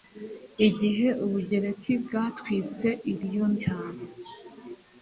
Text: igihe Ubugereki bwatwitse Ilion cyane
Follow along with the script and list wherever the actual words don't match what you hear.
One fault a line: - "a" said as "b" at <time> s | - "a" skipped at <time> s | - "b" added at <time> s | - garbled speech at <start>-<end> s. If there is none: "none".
none